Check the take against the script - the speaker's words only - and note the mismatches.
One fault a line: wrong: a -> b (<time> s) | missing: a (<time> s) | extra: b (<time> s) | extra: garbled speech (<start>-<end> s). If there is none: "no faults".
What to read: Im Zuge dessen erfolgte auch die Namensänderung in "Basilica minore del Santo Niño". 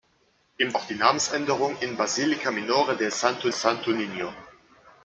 missing: Zuge dessen erfolgte (0.8 s)
extra: Santo (3.5 s)